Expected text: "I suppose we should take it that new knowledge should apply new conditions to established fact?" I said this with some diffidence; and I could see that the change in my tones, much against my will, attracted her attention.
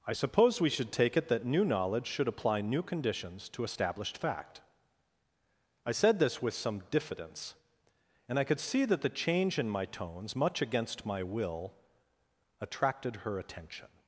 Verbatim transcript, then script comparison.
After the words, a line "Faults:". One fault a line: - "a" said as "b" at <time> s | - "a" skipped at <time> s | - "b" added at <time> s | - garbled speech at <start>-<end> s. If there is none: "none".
"I suppose we should take it that new knowledge should apply new conditions to established fact?" I said this with some diffidence; and I could see that the change in my tones, much against my will, attracted her attention.
Faults:
none